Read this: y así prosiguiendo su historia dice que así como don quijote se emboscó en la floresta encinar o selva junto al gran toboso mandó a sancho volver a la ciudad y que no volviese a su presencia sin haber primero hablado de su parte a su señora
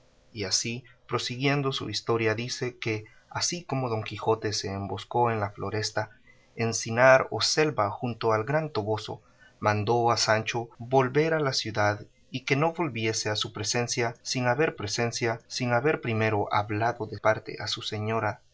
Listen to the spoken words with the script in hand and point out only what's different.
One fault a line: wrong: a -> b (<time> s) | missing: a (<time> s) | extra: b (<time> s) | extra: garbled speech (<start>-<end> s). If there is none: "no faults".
extra: presencia sin haber (14.8 s)
missing: su (17.2 s)